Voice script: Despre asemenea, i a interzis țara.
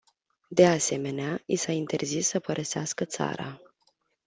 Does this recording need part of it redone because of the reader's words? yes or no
yes